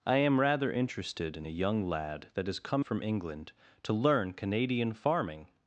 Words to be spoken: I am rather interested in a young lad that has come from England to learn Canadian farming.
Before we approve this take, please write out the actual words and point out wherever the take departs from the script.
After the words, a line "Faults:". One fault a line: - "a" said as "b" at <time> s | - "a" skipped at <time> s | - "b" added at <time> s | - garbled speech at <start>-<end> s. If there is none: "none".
I am rather interested in a young lad that has come from England to learn Canadian farming.
Faults:
none